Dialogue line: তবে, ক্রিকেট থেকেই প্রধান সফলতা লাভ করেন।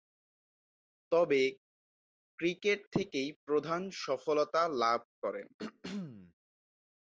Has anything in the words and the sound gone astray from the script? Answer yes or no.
yes